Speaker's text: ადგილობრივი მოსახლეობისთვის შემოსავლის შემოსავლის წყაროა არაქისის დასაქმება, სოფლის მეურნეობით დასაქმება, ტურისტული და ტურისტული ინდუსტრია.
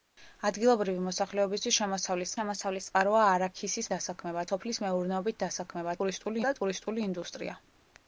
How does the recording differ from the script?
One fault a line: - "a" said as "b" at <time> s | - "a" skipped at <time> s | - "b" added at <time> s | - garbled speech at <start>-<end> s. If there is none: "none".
none